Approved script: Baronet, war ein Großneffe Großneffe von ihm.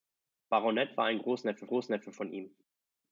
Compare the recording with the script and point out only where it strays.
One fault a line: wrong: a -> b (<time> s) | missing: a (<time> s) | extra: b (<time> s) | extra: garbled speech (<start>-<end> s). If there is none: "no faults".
no faults